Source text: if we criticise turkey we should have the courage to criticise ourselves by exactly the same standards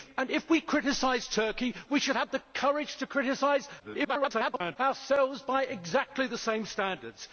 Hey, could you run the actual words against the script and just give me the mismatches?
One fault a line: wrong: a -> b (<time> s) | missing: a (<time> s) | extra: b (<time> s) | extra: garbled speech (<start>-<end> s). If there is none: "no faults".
extra: garbled speech (3.8-4.8 s)